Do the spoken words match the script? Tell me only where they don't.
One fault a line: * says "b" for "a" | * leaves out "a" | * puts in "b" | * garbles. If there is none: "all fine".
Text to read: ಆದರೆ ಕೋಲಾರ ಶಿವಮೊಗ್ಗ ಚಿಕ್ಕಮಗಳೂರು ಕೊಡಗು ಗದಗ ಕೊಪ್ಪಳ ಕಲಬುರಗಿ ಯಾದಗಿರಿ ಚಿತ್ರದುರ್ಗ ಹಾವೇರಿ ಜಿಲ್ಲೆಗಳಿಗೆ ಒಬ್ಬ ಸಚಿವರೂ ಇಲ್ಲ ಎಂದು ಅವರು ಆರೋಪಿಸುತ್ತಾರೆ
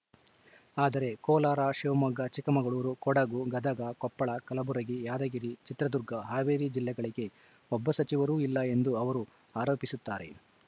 all fine